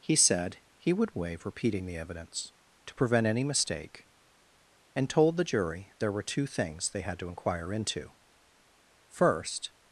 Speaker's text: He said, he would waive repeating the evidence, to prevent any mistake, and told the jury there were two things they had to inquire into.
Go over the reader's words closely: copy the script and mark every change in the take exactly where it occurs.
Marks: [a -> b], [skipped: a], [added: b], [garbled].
He said, he would waive repeating the evidence, to prevent any mistake, and told the jury there were two things they had to inquire into. [added: First]